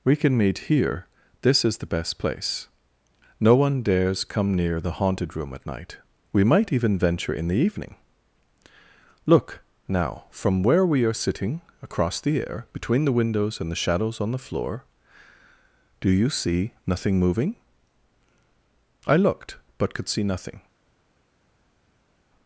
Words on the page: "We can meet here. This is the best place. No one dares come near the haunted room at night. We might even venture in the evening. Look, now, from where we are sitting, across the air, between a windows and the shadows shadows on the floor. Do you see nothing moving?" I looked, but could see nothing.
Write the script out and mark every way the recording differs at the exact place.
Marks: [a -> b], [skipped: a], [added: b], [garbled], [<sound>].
"We can meet here. This is the best place. No one dares come near the haunted room at night. We might even venture in the evening. Look, now, from where we are sitting, across the air, between [a -> the] windows and the shadows [skipped: shadows] on the floor. Do you see nothing moving?" I looked, but could see nothing.